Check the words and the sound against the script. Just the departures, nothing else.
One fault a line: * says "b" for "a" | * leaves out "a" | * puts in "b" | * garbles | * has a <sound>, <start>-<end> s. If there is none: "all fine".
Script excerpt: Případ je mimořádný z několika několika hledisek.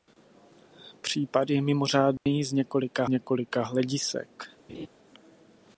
* has a dropout, 2.2-2.3 s
* has a laugh, 4.7-4.9 s